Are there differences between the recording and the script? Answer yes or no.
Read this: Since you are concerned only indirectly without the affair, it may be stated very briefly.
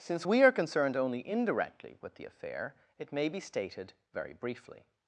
yes